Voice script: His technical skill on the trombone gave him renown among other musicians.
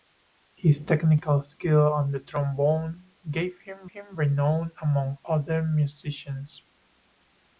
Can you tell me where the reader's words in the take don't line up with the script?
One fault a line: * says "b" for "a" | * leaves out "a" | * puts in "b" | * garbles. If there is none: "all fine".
* puts in "him"